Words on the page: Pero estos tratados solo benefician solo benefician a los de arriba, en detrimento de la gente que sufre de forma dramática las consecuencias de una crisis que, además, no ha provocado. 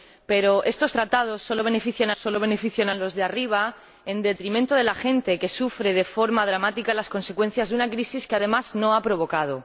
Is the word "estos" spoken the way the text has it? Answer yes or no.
yes